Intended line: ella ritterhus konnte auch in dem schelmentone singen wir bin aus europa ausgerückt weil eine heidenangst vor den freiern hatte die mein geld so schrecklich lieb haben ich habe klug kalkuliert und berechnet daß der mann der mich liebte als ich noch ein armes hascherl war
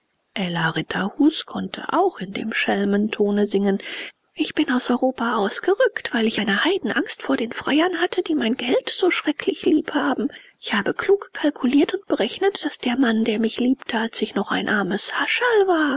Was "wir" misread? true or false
true